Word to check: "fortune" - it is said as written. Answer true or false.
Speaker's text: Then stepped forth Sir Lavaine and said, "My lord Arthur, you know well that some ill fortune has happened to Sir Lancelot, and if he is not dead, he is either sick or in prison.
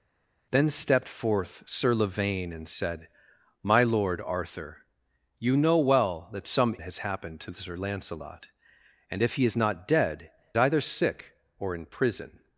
false